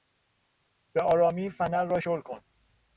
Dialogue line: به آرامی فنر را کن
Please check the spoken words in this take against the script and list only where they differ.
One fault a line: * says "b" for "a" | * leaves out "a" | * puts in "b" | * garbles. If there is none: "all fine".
* puts in "شل"